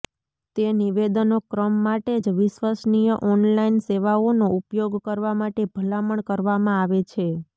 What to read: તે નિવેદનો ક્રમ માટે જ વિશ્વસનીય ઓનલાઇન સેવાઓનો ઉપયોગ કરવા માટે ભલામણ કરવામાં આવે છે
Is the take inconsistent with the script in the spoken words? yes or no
no